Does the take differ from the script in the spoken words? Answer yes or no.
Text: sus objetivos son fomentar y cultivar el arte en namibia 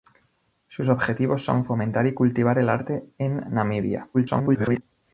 yes